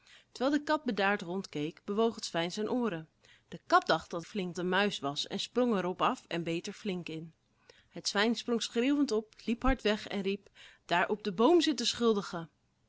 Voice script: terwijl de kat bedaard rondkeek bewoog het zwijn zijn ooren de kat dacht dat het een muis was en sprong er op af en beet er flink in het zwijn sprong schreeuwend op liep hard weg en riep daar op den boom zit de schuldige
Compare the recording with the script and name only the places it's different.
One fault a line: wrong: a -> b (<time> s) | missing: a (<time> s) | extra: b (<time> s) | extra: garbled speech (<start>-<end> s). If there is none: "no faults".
wrong: het -> flink (4.2 s)